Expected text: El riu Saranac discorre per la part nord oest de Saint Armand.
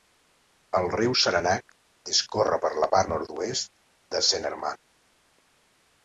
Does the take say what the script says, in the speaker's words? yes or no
yes